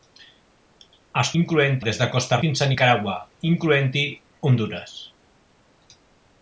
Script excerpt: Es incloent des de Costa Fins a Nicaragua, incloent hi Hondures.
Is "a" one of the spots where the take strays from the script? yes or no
no